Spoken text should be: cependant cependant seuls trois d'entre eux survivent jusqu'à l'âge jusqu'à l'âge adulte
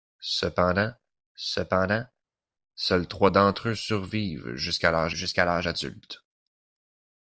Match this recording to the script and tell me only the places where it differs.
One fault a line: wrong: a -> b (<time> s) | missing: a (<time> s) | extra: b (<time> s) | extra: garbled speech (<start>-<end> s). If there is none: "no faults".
no faults